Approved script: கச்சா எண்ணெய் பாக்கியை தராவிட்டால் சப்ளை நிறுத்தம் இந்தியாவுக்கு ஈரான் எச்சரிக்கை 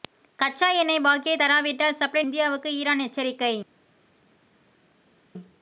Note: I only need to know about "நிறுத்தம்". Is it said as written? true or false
false